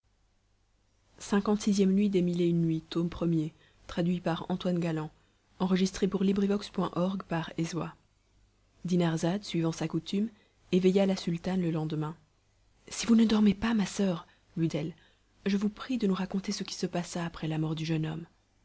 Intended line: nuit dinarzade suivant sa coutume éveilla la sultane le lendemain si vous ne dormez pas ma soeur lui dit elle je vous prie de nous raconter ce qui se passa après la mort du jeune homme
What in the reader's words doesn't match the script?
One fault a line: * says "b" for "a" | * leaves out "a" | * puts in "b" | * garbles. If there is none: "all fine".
* leaves out "dit"